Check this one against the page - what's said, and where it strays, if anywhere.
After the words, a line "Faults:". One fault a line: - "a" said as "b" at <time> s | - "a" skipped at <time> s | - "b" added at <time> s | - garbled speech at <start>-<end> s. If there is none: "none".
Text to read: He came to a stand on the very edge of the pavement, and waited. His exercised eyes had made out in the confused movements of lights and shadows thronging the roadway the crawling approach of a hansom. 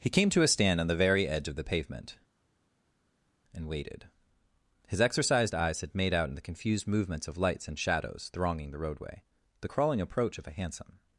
He came to a stand on the very edge of the pavement, and waited. His exercised eyes had made out in the confused movements of lights and shadows thronging the roadway the crawling approach of a hansom.
Faults:
none